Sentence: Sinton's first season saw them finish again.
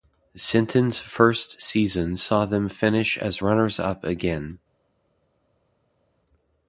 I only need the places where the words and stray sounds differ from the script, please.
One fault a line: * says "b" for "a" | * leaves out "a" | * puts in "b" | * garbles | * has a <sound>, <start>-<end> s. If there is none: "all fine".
* puts in "as runners up"